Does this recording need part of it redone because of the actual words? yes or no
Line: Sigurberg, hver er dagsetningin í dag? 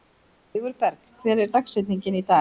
no